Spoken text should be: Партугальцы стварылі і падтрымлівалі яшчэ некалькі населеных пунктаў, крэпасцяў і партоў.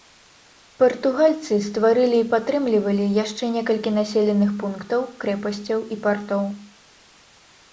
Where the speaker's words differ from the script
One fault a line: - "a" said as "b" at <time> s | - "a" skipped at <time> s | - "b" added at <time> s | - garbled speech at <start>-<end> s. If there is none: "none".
none